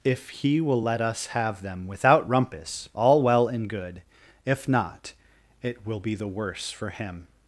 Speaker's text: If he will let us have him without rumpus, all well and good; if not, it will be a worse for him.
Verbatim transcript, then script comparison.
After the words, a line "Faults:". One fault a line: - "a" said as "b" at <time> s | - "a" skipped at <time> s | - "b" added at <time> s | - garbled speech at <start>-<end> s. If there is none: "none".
If he will let us have them without rumpus, all well and good; if not, it will be the worse for him.
Faults:
- "him" said as "them" at 1.6 s
- "a" said as "the" at 6.1 s